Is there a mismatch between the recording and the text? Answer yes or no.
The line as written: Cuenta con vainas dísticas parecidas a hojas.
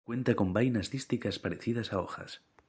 no